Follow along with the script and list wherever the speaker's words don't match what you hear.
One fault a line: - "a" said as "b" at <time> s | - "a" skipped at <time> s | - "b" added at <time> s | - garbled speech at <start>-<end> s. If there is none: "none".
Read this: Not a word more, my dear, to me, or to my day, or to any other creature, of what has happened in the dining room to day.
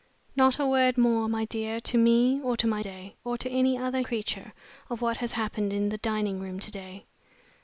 none